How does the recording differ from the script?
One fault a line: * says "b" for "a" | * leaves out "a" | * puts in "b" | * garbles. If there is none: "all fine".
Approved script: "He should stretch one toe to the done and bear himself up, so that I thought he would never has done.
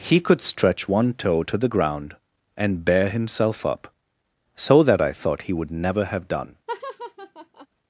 * says "could" for "should"
* says "ground" for "done"
* says "have" for "has"